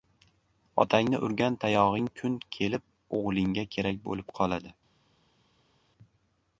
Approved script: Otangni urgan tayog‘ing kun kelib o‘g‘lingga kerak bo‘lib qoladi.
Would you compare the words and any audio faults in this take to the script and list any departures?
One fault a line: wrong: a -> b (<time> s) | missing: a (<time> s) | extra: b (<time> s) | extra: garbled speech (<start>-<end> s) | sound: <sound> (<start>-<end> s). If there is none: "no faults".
no faults